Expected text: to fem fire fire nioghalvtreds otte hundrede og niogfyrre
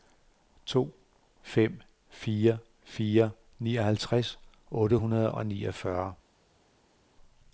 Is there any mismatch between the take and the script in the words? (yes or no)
no